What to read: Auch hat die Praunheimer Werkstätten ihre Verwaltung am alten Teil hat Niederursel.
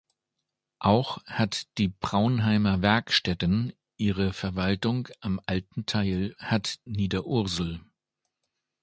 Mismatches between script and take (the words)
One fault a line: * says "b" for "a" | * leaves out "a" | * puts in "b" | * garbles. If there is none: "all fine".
all fine